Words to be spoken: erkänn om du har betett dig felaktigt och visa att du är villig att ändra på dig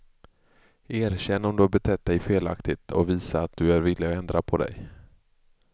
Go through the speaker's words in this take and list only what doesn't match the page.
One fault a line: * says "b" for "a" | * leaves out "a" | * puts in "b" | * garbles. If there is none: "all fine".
all fine